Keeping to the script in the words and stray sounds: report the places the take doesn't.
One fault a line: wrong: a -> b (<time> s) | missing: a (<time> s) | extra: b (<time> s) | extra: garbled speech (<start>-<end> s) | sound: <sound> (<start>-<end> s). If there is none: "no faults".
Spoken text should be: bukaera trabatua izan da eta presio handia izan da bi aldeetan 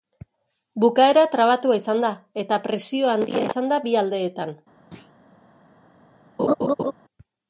sound: thud (4.9-5.1 s)
sound: laugh (6.4-6.9 s)